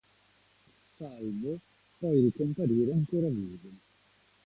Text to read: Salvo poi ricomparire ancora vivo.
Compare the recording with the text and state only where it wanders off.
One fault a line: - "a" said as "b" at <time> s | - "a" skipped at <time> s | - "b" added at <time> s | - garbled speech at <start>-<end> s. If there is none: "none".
none